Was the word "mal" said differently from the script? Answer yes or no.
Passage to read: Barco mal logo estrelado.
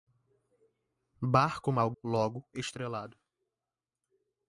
no